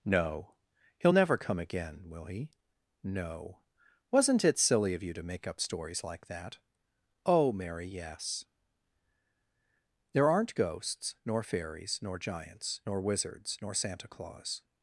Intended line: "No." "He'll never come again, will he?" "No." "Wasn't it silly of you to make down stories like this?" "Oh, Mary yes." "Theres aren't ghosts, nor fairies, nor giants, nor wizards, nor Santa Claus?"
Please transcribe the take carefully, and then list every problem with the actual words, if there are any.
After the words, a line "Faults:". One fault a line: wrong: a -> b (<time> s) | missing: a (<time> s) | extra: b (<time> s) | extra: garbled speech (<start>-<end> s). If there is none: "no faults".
"No." "He'll never come again, will he?" "No." "Wasn't it silly of you to make up stories like that?" "Oh, Mary yes." "There aren't ghosts, nor fairies, nor giants, nor wizards, nor Santa Claus?"
Faults:
wrong: down -> up (5.5 s)
wrong: this -> that (6.3 s)
wrong: Theres -> There (10.1 s)